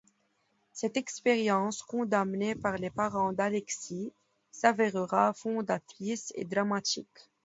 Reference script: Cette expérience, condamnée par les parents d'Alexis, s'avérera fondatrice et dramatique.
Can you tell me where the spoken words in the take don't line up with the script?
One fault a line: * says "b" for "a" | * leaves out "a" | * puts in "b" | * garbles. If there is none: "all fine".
all fine